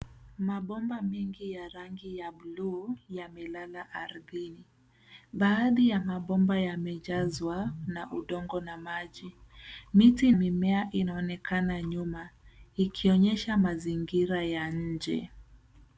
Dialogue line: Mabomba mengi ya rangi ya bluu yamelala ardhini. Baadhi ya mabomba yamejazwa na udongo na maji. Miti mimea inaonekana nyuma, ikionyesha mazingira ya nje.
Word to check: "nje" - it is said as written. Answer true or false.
true